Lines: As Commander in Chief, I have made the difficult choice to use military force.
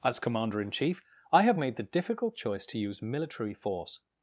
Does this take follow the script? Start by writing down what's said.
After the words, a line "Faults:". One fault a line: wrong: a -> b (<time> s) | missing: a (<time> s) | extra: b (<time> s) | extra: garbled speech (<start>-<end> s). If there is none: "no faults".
As Commander in Chief, I have made the difficult choice to use military force.
Faults:
no faults